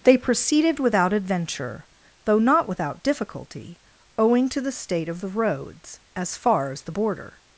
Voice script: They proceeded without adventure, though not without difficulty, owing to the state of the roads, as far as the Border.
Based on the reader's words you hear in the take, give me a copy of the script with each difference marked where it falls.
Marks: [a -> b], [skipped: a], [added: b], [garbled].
They proceeded without adventure, though not without difficulty, owing to the state of the roads, as far as the Border.